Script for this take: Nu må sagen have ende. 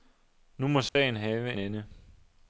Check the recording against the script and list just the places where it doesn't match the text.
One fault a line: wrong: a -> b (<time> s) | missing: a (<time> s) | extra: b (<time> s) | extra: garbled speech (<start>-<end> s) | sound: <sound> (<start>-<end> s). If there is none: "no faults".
sound: dropout (0.9-1.0 s)